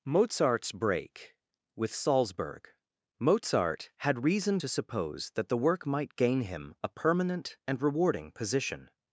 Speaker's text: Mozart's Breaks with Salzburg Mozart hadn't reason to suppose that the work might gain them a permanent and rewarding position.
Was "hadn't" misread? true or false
true